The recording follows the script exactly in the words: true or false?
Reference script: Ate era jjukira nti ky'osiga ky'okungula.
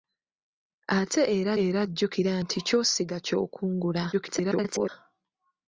false